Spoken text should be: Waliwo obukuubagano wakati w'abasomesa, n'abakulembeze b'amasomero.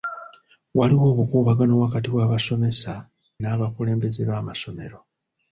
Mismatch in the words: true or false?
false